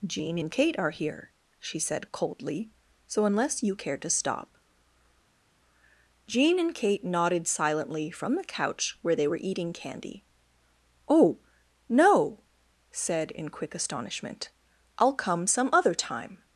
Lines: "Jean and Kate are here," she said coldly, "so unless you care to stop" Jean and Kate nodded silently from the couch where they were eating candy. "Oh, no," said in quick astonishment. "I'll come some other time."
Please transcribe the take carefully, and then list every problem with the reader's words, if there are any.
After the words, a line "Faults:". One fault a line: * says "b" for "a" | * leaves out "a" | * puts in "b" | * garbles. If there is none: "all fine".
"Jean and Kate are here," she said coldly, "so unless you care to stop" Jean and Kate nodded silently from the couch where they were eating candy. "Oh, no," said in quick astonishment. "I'll come some other time."
Faults:
all fine